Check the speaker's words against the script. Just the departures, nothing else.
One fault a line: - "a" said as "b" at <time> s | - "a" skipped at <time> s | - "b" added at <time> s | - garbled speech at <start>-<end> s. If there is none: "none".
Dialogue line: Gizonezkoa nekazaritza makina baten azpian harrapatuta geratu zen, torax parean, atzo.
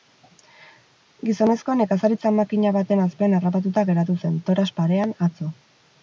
none